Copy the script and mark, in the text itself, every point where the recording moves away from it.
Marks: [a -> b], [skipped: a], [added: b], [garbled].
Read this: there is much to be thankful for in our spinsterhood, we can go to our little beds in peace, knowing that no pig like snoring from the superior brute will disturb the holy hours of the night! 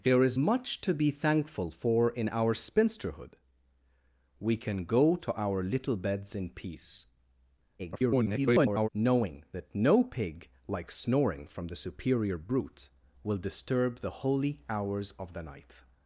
there is much to be thankful for in our spinsterhood, we can go to our little beds in peace, [garbled] knowing that no pig like snoring from the superior brute will disturb the holy hours of the night!